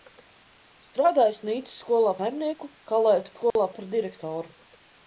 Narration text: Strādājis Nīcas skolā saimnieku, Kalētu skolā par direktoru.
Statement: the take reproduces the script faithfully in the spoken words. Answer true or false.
true